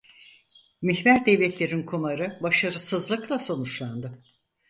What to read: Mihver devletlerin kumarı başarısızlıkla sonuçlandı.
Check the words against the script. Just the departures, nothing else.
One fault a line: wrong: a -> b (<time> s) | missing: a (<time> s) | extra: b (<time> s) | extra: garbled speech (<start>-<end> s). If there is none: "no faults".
no faults